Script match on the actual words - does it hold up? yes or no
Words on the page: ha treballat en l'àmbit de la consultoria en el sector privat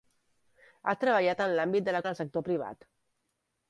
no